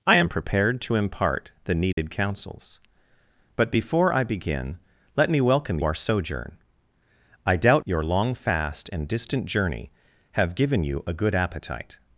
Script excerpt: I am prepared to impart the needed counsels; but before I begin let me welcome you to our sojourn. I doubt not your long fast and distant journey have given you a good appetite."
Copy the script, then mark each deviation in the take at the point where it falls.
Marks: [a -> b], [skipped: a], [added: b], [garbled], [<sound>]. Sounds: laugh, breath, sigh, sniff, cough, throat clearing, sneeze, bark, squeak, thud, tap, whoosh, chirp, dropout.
I am prepared to impart the needed [dropout] counsels; but before I begin let me welcome [skipped: you to] our sojourn. I doubt [skipped: not] your long fast and distant journey have given you a good appetite."